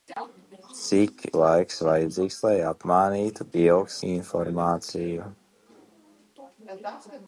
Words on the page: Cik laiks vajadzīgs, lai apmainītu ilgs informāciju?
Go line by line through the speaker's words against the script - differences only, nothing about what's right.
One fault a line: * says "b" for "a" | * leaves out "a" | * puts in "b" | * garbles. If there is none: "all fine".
all fine